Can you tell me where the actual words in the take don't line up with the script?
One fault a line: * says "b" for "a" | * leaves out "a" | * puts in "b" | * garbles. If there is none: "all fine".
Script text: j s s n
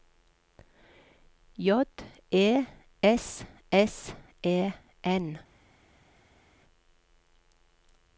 * puts in "e"
* puts in "e"